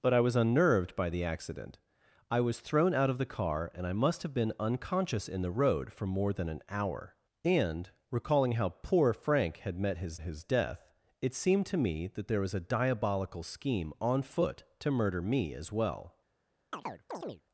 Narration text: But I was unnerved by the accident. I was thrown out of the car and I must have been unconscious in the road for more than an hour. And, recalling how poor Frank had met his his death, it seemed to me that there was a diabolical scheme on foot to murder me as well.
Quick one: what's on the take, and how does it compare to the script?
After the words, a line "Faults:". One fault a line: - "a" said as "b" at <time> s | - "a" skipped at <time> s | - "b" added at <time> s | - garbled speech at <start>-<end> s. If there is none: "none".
But I was unnerved by the accident. I was thrown out of the car and I must have been unconscious in the road for more than an hour. And, recalling how poor Frank had met his his death, it seemed to me that there was a diabolical scheme on foot to murder me as well.
Faults:
none